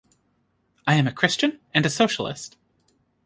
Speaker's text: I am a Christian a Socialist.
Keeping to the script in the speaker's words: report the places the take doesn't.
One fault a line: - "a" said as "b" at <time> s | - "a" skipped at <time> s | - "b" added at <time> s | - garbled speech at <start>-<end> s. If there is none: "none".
- "and" added at 1.8 s